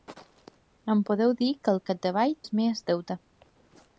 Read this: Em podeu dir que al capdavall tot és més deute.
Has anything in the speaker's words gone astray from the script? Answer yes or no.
yes